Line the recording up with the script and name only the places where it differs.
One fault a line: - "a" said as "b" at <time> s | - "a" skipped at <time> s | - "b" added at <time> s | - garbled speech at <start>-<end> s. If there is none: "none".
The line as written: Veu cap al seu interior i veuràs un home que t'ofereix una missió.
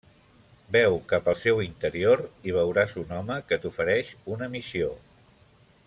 none